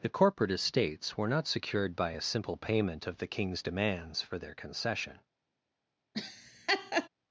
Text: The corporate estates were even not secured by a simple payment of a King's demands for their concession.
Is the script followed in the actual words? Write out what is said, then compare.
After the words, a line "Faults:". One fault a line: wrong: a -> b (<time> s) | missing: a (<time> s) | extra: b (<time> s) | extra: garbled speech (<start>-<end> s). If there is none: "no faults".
The corporate estates were not secured by a simple payment of the King's demands for their concession.
Faults:
missing: even (1.3 s)
wrong: a -> the (3.2 s)